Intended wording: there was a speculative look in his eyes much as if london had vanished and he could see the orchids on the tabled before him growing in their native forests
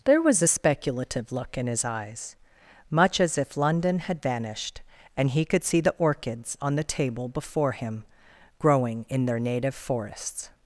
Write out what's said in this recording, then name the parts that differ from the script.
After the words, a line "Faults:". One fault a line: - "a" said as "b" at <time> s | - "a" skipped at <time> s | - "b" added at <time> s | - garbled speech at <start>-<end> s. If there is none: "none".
there was a speculative look in his eyes much as if london had vanished and he could see the orchids on the table before him growing in their native forests
Faults:
- "tabled" said as "table" at 6.8 s